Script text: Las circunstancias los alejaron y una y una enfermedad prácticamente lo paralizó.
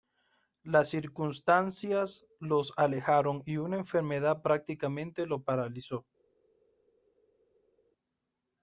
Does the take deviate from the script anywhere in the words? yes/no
yes